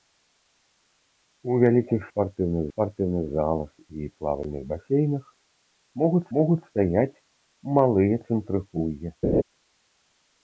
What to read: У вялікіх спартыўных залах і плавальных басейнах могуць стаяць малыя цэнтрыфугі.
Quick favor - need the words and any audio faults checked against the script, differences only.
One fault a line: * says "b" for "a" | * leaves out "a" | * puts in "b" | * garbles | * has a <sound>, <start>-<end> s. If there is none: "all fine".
* puts in "спартыўных"
* puts in "могуць"
* has a laugh, 9.2-9.4 s